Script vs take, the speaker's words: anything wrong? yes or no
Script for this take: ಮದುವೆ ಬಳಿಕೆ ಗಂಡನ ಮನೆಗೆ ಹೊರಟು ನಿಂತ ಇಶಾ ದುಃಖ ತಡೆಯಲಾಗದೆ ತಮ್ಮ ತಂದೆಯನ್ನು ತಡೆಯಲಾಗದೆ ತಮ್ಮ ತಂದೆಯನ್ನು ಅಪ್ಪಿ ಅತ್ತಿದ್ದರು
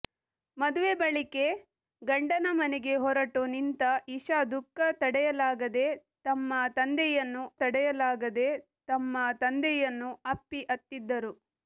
no